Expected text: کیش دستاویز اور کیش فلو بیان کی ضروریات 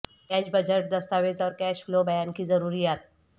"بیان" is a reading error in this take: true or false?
false